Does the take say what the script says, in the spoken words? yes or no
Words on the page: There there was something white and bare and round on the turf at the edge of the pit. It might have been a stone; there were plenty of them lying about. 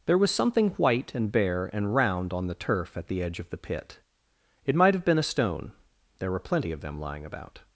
no